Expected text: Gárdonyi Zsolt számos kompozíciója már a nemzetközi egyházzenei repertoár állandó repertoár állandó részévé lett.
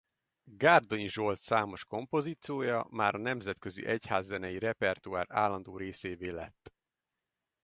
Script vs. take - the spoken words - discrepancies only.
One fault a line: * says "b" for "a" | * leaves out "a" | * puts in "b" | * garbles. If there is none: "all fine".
* leaves out "repertoár állandó"